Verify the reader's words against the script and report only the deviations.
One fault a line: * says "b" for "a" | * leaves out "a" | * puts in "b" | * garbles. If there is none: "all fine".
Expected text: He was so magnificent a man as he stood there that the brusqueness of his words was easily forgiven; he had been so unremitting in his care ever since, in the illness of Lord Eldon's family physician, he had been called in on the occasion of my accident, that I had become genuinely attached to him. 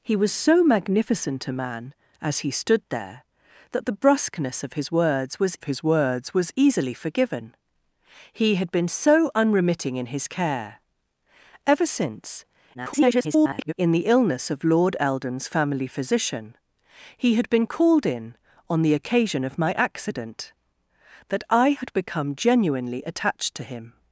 * puts in "his words was"
* garbles